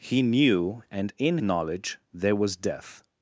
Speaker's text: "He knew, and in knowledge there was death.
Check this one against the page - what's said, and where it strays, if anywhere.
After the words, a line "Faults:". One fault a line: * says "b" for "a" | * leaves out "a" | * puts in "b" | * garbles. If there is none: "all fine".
"He knew, and in knowledge there was death.
Faults:
all fine